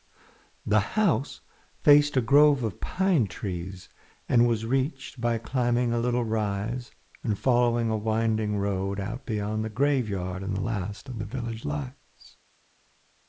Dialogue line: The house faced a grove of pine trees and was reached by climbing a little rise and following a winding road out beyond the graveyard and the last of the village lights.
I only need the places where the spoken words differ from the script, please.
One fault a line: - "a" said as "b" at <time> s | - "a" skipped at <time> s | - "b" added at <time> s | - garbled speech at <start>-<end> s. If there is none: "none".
none